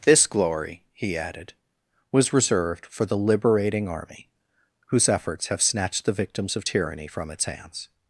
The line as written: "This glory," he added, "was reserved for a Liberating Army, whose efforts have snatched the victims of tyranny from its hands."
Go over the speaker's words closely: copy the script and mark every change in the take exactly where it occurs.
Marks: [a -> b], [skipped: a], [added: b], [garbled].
"This glory," he added, "was reserved for [a -> the] Liberating Army, whose efforts have snatched the victims of tyranny from its hands."